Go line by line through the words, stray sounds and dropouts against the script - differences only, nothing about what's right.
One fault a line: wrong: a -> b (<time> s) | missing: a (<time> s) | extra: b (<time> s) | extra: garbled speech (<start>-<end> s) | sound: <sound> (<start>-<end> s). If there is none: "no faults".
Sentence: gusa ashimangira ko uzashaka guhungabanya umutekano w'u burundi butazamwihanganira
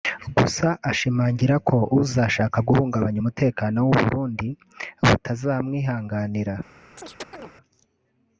sound: chirp (7.0-7.5 s)